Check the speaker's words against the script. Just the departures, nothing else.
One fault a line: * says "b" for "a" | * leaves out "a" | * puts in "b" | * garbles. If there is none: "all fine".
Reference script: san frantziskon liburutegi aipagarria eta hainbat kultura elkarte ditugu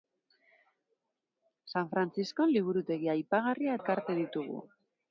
* leaves out "eta hainbat kultura"